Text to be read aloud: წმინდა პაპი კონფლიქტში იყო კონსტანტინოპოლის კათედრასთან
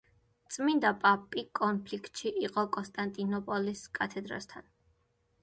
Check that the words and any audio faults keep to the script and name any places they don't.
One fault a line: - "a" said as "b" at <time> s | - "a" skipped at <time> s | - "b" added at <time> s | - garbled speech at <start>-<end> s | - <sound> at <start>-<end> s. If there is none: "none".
none